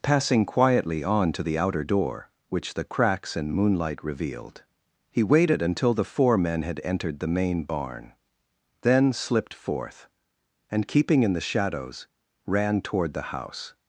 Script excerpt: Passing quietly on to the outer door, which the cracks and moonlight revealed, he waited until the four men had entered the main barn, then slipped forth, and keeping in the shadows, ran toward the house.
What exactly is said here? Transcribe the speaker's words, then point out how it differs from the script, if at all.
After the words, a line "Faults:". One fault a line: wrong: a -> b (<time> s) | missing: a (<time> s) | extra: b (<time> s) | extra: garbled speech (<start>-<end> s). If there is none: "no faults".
Passing quietly on to the outer door, which the cracks and moonlight revealed, he waited until the four men had entered the main barn, then slipped forth, and keeping in the shadows, ran toward the house.
Faults:
no faults